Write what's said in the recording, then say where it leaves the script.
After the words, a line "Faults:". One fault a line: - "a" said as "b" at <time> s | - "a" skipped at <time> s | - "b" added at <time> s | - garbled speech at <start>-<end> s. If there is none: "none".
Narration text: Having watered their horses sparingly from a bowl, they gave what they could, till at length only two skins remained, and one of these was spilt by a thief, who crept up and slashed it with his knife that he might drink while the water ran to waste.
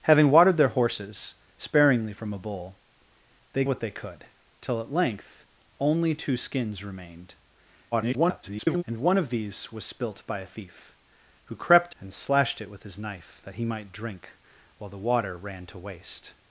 Having watered their horses sparingly from a bowl, they what they could, till at length only two skins remained, [garbled] and one of these was spilt by a thief, who crept and slashed it with his knife that he might drink while the water ran to waste.
Faults:
- "gave" skipped at 3.6 s
- garbled speech at 7.9-8.8 s
- "up" skipped at 12.0 s